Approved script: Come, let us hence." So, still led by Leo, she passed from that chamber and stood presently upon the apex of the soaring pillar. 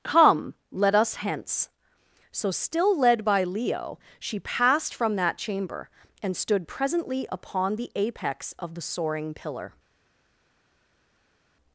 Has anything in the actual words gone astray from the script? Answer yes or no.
no